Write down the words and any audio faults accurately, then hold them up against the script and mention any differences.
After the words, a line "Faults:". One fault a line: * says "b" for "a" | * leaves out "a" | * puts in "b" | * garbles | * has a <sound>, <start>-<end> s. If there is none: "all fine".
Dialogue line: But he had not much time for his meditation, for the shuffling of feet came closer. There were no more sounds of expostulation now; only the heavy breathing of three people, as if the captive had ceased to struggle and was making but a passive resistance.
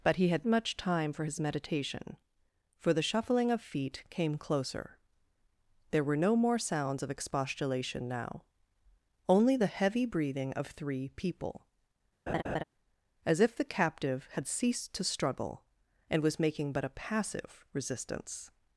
But he had much time for his meditation, for the shuffling of feet came closer. There were no more sounds of expostulation now; only the heavy breathing of three people, as if the captive had ceased to struggle and was making but a passive resistance.
Faults:
* leaves out "not"
* has a laugh, 12.3-12.6 s